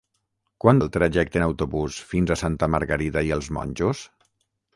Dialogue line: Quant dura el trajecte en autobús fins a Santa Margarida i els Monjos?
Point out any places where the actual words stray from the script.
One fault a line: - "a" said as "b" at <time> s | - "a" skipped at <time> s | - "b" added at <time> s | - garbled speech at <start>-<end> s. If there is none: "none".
- "dura" skipped at 0.8 s